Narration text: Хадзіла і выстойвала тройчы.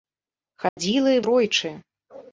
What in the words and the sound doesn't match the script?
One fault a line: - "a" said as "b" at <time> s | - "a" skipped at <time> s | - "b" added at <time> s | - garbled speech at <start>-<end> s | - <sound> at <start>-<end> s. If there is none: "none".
- dropout at 0.7-0.8 s
- "выстойвала" skipped at 1.2 s